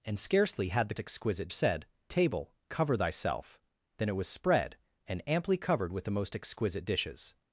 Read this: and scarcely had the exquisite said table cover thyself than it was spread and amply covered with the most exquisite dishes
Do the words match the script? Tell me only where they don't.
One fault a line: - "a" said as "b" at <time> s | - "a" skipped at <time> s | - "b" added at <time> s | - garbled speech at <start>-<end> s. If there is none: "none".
none